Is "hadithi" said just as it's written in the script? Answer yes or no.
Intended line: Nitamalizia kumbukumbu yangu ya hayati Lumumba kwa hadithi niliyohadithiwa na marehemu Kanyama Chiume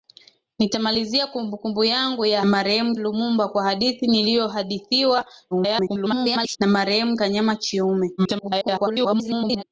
yes